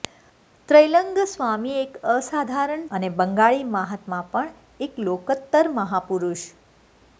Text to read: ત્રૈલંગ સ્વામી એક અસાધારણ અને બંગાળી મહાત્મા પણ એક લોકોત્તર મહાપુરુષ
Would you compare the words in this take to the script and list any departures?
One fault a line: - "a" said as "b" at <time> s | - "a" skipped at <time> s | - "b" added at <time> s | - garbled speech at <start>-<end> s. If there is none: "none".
none